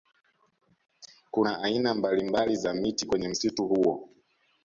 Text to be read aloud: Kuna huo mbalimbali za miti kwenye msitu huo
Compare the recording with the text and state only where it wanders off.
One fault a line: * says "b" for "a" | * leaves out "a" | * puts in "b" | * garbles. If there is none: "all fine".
* says "aina" for "huo"